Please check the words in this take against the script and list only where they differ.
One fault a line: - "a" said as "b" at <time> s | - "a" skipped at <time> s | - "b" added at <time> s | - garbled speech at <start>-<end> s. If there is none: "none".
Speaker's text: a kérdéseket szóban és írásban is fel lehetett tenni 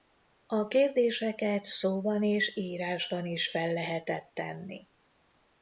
none